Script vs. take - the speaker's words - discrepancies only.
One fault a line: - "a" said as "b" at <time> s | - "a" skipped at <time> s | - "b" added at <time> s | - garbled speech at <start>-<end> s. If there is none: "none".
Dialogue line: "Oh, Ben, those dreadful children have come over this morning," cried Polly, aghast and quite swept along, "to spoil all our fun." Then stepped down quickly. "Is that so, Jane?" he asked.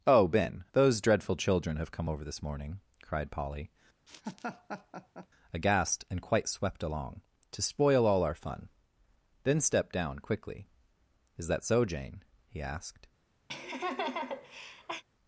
none